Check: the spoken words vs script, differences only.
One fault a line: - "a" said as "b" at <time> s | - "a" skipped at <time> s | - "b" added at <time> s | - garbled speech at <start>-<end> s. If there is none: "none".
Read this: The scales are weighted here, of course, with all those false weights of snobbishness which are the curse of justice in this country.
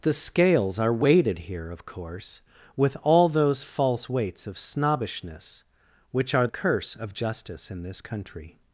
- "the" skipped at 6.5 s